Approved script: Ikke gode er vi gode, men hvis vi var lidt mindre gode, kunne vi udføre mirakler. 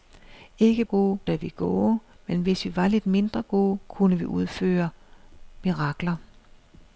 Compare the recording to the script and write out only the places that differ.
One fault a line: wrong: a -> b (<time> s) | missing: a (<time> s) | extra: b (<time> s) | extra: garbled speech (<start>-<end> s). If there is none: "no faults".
no faults